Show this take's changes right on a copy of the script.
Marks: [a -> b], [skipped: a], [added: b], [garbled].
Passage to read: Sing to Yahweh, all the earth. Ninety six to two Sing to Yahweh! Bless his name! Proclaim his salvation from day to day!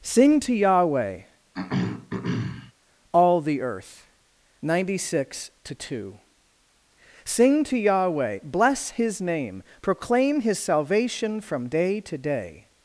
Sing to Yahweh, all the earth. Ninety six to two Sing to Yahweh! Bless his name! Proclaim his salvation from day to day!